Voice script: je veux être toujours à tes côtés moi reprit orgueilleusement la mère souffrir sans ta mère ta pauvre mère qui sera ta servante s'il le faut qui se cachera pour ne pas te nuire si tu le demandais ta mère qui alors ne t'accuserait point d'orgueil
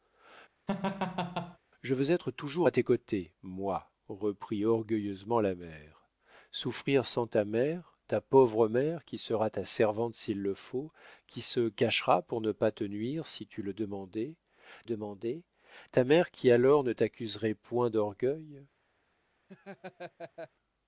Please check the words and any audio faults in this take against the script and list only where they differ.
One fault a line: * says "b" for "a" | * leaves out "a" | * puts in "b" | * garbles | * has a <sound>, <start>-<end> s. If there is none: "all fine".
* has a laugh, 0.7-1.6 s
* puts in "demandais"
* has a laugh, 19.5-20.5 s